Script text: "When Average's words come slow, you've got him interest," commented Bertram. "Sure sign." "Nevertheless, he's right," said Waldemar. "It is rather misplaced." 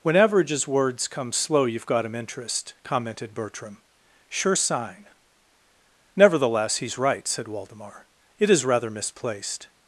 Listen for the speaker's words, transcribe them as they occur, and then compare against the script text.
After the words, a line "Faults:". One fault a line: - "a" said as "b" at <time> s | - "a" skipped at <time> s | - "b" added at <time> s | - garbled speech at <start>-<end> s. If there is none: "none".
"When Average's words come slow, you've got him interest," commented Bertram. "Sure sign." "Nevertheless, he's right," said Waldemar. "It is rather misplaced."
Faults:
none